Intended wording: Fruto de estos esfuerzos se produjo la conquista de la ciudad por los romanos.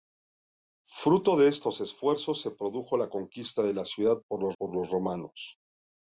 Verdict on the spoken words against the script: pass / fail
fail